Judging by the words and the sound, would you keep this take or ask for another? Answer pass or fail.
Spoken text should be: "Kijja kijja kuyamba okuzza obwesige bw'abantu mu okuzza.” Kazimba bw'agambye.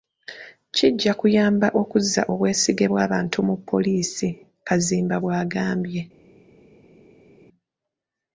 fail